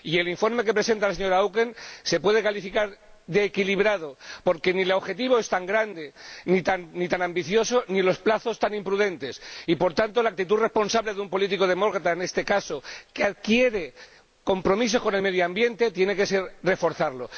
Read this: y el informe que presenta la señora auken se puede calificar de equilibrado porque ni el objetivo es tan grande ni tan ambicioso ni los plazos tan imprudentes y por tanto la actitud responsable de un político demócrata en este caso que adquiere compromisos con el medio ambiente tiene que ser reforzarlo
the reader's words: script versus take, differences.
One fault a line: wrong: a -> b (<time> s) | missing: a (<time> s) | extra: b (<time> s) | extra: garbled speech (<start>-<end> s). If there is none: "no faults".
no faults